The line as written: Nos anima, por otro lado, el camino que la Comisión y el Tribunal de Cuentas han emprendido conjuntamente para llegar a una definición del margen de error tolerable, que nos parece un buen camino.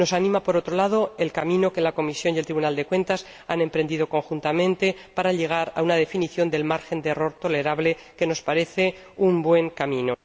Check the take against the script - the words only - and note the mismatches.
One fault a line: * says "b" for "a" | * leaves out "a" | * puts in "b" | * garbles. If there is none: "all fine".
all fine